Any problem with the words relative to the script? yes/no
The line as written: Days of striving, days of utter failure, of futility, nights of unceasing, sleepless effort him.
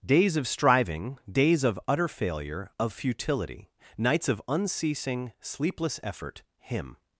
no